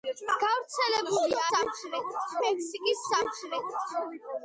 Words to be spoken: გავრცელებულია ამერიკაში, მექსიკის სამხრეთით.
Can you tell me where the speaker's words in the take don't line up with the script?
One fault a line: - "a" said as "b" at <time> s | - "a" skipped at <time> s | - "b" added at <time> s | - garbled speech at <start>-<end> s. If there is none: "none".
- "ამერიკაში" said as "სამხრეთით" at 1.5 s